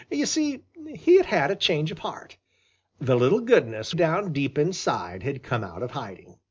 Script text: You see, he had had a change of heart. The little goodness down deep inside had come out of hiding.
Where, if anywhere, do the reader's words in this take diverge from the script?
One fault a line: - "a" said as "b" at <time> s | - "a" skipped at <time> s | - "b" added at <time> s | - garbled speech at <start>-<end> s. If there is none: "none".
none